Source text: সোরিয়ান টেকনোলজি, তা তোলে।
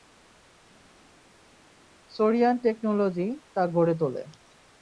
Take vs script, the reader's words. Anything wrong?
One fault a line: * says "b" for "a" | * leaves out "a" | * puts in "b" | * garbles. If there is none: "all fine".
* puts in "গড়ে"